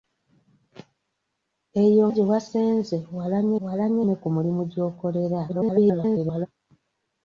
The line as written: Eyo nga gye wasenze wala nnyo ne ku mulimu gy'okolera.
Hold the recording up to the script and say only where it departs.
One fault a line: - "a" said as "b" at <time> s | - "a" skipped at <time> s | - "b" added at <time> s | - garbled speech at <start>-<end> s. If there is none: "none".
- "nga" skipped at 2.0 s
- "wala nnyo" added at 3.7 s
- garbled speech at 5.5-6.5 s